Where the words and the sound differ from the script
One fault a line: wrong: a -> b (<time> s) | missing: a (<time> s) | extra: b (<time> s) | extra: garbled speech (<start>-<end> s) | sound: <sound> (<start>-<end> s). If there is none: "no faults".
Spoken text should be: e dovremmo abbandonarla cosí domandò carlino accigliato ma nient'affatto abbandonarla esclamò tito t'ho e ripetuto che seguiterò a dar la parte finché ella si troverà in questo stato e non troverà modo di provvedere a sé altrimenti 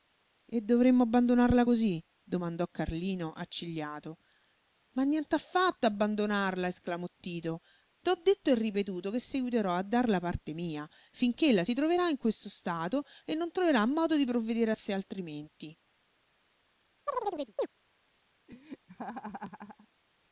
extra: detto (8.2 s)
extra: mia (10.5 s)
sound: chirp (17.1-17.7 s)
sound: laugh (18.5-19.9 s)